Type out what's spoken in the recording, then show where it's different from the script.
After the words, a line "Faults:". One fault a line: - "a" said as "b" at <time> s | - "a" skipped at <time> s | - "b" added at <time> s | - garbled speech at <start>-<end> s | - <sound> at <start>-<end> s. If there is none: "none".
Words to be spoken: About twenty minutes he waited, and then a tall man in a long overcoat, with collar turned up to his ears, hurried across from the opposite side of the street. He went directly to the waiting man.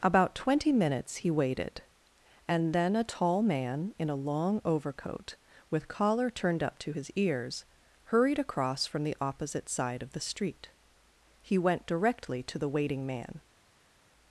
About twenty minutes he waited, and then a tall man in a long overcoat, with collar turned up to his ears, hurried across from the opposite side of the street. He went directly to the waiting man.
Faults:
none